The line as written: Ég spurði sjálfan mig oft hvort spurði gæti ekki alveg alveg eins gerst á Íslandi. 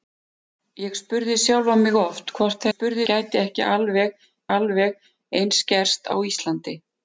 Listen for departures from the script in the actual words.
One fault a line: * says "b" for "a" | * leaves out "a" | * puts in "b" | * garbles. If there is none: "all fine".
all fine